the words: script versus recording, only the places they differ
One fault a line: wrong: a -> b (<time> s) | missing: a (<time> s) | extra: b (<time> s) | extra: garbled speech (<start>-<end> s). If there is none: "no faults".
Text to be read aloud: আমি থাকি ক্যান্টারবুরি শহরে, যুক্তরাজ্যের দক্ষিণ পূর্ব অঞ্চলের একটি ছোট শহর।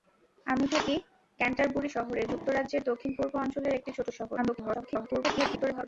extra: garbled speech (4.4-5.8 s)